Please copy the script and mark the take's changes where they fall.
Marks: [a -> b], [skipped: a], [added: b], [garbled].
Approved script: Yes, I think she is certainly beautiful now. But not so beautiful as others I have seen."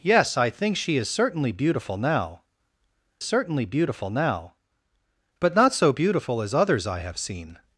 Yes, I think she is certainly beautiful now. [added: certainly beautiful now] But not so beautiful as others I have seen."